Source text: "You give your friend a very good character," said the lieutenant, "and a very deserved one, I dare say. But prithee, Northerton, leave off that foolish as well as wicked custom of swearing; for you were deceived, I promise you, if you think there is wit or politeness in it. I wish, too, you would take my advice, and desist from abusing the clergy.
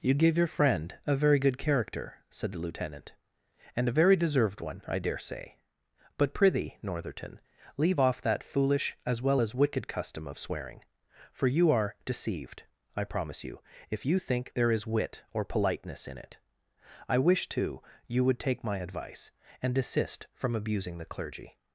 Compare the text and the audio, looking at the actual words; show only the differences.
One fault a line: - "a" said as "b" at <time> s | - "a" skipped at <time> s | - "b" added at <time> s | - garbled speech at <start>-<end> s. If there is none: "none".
- "were" said as "are" at 11.7 s